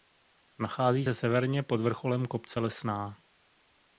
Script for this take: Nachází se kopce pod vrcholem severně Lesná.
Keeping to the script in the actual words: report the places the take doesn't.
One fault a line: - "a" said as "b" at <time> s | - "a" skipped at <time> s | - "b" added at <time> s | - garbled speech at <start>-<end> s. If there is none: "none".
- "kopce" said as "severně" at 1.1 s
- "severně" said as "kopce" at 2.3 s